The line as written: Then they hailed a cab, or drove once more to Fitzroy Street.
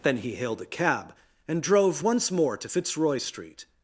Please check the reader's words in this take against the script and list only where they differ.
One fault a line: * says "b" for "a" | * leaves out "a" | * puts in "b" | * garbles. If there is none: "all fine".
* says "he" for "they"
* says "and" for "or"